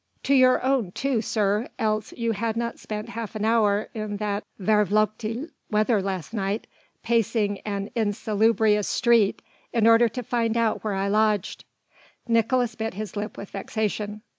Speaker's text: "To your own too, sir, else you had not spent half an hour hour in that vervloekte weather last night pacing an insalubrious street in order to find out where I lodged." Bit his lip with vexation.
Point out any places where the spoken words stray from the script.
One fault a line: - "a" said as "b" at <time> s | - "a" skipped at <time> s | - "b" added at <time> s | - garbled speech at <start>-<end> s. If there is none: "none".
- "hour" skipped at 3.9 s
- "Nicolaes" added at 12.3 s